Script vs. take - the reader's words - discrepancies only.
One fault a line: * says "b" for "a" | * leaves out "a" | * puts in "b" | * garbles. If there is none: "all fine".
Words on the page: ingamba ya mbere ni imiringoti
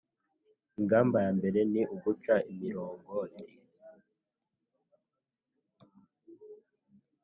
* puts in "uguca"